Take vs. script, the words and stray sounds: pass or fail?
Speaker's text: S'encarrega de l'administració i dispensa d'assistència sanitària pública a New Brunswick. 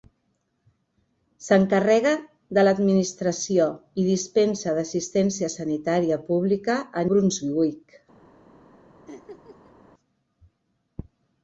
fail